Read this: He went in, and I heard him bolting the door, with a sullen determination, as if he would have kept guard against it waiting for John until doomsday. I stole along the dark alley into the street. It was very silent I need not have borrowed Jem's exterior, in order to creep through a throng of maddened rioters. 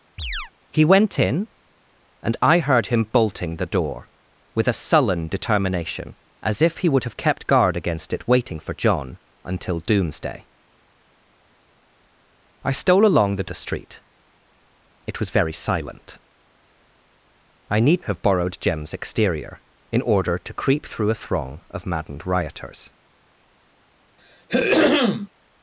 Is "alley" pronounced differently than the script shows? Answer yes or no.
yes